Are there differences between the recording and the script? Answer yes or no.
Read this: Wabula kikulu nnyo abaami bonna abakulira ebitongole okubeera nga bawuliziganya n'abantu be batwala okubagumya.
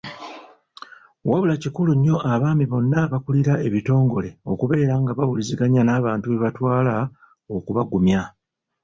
no